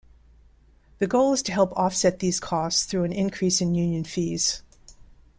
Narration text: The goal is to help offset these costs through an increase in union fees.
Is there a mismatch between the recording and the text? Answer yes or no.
no